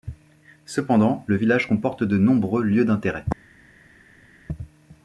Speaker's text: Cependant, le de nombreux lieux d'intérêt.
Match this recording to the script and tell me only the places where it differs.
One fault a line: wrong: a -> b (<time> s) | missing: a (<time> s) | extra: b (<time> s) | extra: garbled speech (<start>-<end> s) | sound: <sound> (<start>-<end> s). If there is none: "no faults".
extra: village comporte (1.3 s)